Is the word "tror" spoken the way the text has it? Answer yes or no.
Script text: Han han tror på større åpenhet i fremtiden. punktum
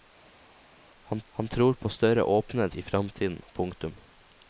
yes